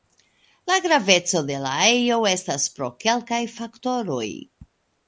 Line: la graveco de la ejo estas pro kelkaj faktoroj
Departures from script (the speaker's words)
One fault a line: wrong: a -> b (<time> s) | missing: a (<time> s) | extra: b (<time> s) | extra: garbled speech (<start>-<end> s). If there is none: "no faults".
no faults